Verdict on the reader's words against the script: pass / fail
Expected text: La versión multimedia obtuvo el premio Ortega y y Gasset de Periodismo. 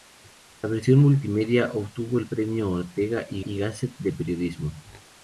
pass